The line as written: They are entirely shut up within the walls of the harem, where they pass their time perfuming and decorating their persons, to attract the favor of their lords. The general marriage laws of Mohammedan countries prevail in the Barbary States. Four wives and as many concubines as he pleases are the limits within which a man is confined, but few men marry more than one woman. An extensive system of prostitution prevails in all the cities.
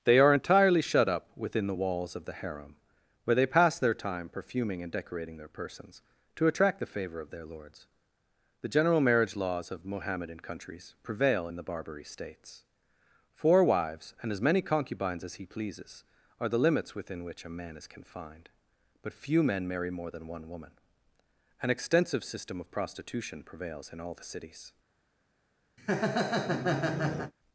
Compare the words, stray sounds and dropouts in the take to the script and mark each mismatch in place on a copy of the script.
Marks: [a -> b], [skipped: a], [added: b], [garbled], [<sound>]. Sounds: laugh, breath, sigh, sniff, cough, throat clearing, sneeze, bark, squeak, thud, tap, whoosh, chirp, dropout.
They are entirely shut up within the walls of the harem, where they pass their time perfuming and decorating their persons, to attract the favor of their lords. The general marriage laws of Mohammedan countries prevail in the Barbary States. Four wives and as many concubines as he pleases are the limits within which a man is confined, but few men marry more than one woman. An extensive system of prostitution prevails in all the cities. [laugh]